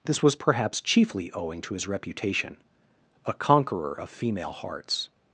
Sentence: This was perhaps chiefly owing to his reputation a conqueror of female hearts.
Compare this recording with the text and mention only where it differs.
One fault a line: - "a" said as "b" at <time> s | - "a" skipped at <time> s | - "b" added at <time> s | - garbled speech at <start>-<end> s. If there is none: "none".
none